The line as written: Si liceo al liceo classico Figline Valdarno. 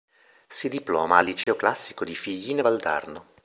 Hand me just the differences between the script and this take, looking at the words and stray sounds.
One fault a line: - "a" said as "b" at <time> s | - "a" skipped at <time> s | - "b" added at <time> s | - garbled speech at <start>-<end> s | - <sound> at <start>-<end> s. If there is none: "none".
- "liceo" said as "diploma" at 0.7 s
- dropout at 1.4-1.5 s
- "di" added at 2.0 s